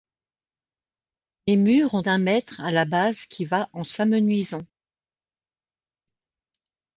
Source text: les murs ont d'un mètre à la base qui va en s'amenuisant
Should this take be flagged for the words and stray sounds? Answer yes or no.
no